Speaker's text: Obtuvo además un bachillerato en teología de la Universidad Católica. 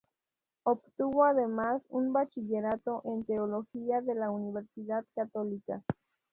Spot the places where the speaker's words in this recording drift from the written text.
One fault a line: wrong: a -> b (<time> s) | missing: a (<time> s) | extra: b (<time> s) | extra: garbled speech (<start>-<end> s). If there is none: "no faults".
no faults